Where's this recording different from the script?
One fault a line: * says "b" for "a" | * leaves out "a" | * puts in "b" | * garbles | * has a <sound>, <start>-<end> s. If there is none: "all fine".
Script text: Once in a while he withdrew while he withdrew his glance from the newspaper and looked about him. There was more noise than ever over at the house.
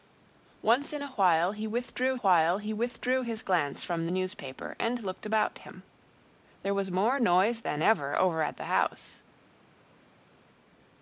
all fine